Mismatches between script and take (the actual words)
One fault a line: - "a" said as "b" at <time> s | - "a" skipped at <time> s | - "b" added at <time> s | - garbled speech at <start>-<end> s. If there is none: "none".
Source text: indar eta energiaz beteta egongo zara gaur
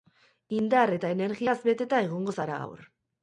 none